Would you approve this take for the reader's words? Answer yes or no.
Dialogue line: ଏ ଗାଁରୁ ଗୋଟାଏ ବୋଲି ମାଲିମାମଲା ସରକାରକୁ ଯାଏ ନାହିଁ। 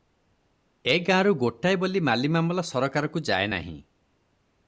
yes